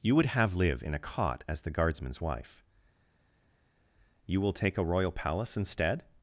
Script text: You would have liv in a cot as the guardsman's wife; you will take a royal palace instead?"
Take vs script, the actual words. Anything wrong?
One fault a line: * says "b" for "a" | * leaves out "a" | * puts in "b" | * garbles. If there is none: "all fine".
all fine